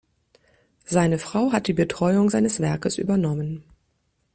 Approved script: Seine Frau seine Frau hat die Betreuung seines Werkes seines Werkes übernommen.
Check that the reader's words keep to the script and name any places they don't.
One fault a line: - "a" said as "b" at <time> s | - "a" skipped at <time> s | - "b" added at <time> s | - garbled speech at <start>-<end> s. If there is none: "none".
- "seine Frau" skipped at 1.5 s
- "seines Werkes" skipped at 3.0 s